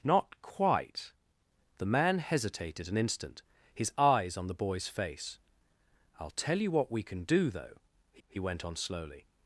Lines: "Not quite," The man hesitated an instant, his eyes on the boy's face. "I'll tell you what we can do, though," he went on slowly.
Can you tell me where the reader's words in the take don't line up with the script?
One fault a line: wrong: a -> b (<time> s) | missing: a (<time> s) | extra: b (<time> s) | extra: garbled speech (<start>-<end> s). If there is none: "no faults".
extra: he (8.3 s)